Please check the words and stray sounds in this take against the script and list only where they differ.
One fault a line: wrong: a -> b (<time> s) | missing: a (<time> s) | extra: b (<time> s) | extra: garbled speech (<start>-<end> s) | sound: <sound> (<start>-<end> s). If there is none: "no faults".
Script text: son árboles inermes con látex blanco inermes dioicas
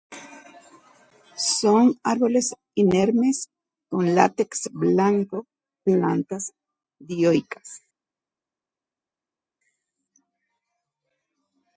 wrong: inermes -> plantas (5.8 s)